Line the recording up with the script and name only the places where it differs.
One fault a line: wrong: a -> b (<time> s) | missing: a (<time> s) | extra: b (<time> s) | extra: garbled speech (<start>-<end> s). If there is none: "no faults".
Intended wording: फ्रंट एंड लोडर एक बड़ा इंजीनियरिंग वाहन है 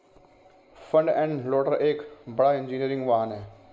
no faults